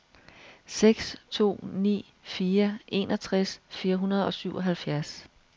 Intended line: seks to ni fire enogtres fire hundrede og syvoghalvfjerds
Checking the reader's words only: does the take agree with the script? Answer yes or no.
yes